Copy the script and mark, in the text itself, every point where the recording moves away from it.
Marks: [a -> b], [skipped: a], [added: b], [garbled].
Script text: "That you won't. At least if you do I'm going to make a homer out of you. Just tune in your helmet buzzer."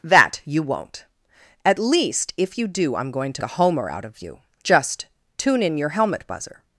"That you won't. At least if you do I'm going to [skipped: make] a homer out of you. Just tune in your helmet buzzer."